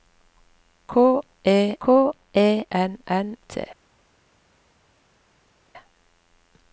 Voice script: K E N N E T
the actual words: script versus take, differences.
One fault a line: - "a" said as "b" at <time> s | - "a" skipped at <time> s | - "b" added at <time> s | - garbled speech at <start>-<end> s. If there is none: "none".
- "k E" added at 1.8 s
- "E" skipped at 3.4 s